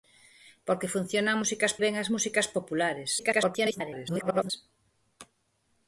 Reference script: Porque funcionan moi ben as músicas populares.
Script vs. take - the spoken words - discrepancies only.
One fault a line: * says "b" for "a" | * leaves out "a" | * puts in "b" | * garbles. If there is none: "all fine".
* says "músicas" for "moi"
* garbles